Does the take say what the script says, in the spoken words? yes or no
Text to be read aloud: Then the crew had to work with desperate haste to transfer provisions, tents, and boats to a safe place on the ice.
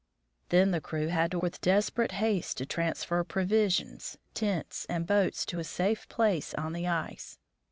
no